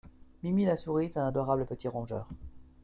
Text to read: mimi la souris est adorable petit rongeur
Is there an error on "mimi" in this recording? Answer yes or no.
no